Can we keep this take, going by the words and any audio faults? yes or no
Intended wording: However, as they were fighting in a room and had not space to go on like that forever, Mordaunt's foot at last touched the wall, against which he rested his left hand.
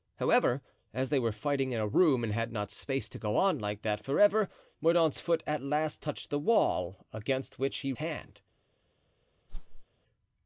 no